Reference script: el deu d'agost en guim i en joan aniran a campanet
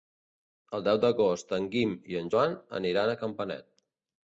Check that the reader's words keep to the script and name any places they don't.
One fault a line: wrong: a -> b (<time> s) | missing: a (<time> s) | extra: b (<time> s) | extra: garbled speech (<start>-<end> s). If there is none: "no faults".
no faults